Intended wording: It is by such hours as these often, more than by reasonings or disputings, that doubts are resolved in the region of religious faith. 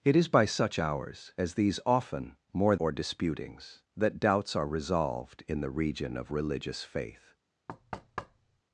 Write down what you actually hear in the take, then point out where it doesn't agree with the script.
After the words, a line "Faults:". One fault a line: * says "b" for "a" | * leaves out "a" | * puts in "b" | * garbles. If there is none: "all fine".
It is by such hours as these often, more or disputings, that doubts are resolved in the region of religious faith.
Faults:
* leaves out "than by reasonings"